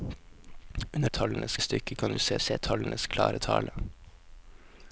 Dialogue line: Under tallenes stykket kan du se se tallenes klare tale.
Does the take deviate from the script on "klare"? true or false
false